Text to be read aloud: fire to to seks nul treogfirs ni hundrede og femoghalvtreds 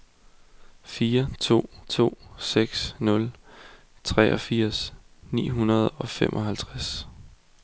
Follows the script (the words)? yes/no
yes